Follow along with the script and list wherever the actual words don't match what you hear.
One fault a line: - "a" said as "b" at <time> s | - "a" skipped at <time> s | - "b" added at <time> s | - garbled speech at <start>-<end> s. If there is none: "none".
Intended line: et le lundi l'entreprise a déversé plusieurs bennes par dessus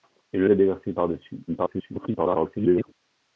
- "lundi l'entreprise" skipped at 0.5 s
- "plusieurs bennes" skipped at 0.9 s
- garbled speech at 1.5-2.9 s